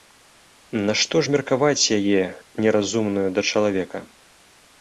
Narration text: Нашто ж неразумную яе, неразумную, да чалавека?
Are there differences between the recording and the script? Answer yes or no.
yes